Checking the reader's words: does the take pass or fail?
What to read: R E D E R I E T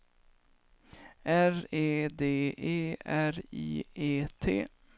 pass